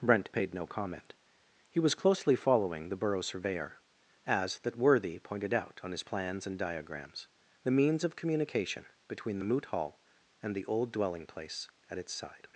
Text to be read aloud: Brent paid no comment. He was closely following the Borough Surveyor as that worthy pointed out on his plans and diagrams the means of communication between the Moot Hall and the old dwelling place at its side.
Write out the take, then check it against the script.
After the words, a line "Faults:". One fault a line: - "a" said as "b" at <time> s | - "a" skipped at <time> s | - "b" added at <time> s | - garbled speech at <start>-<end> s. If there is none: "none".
Brent paid no comment. He was closely following the Borough Surveyor as that worthy pointed out on his plans and diagrams the means of communication between the Moot Hall and the old dwelling place at its side.
Faults:
none